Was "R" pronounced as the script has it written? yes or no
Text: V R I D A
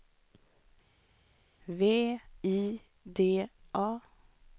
no